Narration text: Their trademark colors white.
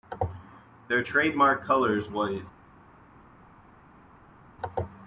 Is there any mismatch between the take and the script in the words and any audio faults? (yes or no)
no